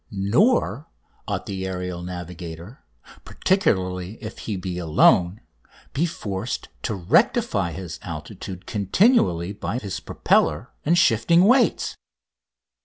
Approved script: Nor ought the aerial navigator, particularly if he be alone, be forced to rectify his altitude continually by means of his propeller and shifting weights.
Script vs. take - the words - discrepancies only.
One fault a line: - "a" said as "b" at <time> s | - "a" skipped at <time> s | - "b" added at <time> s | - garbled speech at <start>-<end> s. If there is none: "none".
- "means of" skipped at 9.8 s